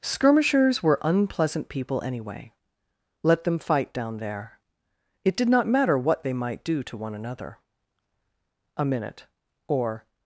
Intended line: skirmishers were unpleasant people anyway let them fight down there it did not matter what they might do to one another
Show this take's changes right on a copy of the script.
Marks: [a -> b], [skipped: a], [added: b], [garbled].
skirmishers were unpleasant people anyway let them fight down there it did not matter what they might do to one another [added: a minute or]